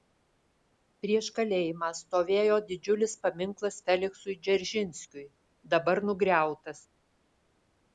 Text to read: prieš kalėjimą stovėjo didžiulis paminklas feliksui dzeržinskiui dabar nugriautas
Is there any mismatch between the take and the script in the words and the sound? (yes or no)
no